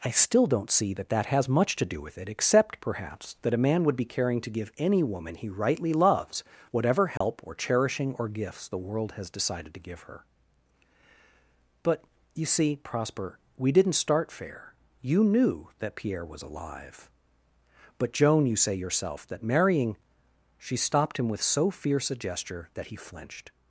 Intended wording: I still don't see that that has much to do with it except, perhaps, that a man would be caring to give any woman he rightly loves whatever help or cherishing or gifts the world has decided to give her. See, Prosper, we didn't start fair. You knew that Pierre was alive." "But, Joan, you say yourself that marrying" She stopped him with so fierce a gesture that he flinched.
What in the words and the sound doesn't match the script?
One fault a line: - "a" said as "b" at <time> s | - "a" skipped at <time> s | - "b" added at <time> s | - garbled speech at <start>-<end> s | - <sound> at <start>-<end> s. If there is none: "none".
- dropout at 7.2-7.2 s
- "But you" added at 11.8 s